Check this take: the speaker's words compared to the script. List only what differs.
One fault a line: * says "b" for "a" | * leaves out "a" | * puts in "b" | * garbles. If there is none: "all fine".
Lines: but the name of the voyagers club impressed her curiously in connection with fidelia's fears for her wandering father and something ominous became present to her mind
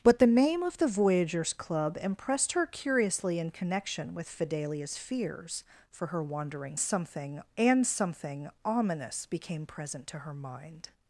* says "something" for "father"